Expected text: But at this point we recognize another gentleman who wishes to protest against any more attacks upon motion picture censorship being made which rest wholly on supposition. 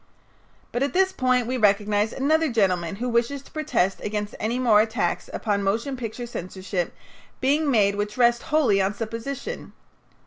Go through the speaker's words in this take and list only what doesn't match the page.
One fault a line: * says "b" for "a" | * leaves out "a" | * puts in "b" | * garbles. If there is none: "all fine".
all fine